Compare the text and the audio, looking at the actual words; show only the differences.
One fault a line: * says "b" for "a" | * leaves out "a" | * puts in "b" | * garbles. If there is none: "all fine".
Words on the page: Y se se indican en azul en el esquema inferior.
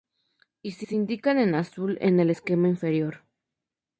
all fine